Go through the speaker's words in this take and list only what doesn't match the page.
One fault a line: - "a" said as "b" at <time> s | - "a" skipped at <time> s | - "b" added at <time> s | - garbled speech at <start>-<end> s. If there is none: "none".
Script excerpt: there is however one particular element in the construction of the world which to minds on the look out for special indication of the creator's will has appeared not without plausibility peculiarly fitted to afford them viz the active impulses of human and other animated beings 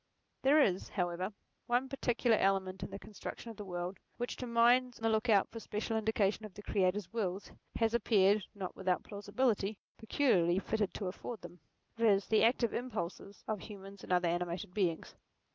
- "on" skipped at 5.0 s